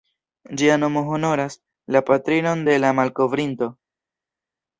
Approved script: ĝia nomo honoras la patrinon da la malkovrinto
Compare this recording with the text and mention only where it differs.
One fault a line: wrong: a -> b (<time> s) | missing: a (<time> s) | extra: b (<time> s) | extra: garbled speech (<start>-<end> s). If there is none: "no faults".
wrong: da -> de (2.7 s)